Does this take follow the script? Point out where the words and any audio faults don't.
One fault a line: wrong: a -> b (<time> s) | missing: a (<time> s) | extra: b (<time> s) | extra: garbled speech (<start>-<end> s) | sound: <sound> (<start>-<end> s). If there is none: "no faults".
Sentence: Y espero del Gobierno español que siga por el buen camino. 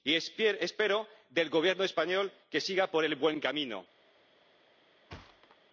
sound: thud (5.1-5.6 s)